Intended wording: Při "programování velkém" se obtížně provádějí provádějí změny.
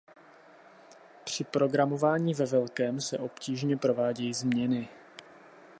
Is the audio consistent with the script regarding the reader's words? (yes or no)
no